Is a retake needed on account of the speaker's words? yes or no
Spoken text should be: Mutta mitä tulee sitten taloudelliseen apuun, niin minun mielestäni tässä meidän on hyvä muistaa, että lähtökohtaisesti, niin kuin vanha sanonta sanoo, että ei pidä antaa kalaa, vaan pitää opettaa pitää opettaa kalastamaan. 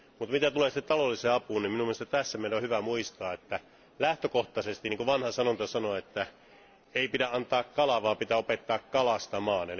yes